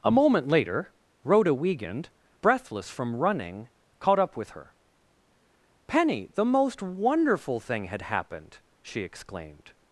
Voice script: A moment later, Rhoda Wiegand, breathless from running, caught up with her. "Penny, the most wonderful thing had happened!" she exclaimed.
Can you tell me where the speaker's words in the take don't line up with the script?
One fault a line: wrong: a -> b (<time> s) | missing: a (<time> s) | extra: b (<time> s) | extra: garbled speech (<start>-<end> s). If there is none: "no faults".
no faults